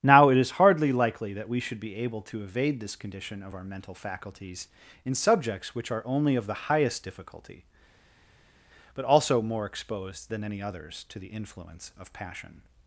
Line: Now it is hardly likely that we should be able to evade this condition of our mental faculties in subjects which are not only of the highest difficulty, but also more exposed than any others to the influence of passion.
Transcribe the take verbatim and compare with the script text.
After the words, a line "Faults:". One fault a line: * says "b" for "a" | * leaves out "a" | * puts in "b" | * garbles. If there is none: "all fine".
Now it is hardly likely that we should be able to evade this condition of our mental faculties in subjects which are only of the highest difficulty, but also more exposed than any others to the influence of passion.
Faults:
* leaves out "not"